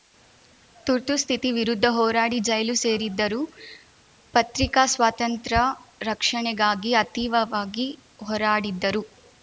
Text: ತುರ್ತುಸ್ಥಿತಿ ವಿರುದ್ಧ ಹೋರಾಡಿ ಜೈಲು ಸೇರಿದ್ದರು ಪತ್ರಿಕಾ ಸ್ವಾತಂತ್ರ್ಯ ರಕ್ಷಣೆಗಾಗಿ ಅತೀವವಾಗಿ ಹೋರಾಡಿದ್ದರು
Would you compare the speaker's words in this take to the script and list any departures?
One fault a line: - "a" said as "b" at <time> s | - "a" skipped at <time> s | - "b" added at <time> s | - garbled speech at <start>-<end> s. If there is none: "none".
none